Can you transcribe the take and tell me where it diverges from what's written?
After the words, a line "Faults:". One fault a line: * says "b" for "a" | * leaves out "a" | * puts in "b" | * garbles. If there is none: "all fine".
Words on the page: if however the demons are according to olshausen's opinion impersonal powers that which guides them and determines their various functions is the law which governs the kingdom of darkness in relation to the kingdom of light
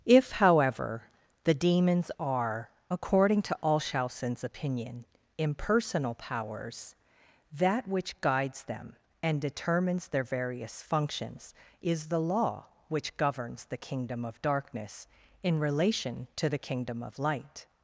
if however the demons are according to olshausen's opinion impersonal powers that which guides them and determines their various functions is the law which governs the kingdom of darkness in relation to the kingdom of light
Faults:
all fine